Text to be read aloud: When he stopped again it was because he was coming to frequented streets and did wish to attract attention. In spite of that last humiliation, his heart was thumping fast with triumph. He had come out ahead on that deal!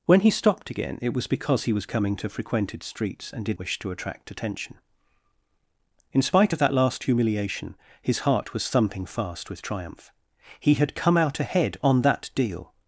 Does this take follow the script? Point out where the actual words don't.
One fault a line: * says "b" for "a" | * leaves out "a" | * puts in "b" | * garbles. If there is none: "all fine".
all fine